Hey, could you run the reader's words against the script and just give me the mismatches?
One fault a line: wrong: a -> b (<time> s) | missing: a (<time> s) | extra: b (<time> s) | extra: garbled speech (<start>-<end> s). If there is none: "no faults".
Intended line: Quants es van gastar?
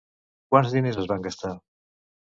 extra: diners (0.8 s)